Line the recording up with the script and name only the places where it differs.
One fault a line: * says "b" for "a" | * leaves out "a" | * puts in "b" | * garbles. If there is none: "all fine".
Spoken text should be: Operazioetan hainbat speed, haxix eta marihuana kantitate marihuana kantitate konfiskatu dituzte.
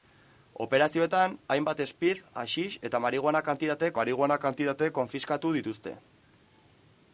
all fine